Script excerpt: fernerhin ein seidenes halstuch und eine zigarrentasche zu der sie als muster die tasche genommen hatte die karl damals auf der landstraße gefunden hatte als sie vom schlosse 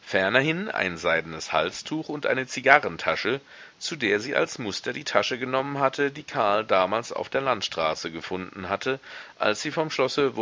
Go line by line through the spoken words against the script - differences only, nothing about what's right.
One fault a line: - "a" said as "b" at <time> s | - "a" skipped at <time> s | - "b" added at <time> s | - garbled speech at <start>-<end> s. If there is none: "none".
none